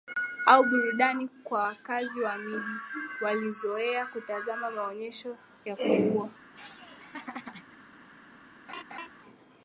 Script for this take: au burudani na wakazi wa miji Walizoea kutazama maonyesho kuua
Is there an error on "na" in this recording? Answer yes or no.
yes